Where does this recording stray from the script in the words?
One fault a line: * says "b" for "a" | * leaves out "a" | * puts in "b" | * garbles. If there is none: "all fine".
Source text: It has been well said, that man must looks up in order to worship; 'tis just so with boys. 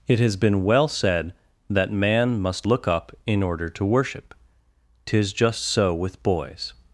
* says "look" for "looks"